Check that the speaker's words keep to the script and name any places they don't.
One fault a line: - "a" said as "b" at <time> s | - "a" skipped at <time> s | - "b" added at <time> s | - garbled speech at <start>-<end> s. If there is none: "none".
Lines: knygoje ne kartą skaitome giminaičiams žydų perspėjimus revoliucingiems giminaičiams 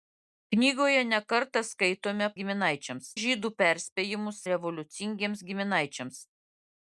none